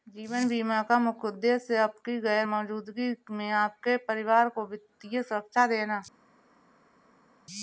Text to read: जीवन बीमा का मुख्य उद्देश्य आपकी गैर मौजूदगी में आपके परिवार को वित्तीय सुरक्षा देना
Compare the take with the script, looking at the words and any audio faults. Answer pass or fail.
pass